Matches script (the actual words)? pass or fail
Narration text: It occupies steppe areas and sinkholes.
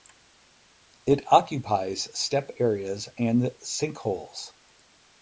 pass